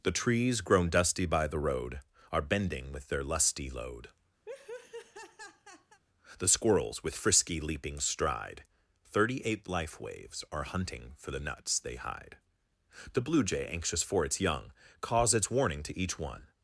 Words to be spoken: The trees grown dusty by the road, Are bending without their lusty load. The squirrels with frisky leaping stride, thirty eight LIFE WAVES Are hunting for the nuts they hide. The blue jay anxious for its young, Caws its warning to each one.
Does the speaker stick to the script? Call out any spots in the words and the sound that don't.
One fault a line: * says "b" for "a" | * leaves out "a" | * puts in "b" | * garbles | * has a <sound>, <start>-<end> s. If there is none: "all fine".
* says "with" for "without"
* has a laugh, 4.5-6.0 s